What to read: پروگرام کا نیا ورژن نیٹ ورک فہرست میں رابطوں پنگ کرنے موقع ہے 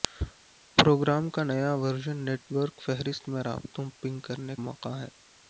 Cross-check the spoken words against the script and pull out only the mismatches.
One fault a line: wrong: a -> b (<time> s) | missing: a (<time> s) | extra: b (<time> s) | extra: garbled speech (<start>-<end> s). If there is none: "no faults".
no faults